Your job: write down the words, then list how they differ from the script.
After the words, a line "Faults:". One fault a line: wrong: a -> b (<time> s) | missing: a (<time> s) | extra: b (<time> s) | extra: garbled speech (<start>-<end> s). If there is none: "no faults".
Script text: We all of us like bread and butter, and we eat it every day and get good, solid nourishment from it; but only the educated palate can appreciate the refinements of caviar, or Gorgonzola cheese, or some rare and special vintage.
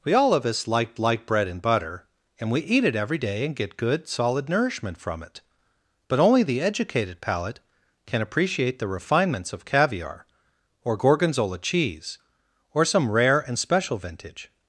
We all of us like like bread and butter, and we eat it every day and get good, solid nourishment from it; but only the educated palate can appreciate the refinements of caviar, or Gorgonzola cheese, or some rare and special vintage.
Faults:
extra: like (1.0 s)